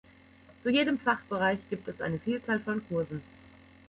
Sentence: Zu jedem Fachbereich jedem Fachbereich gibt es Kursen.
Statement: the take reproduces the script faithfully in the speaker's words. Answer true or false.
false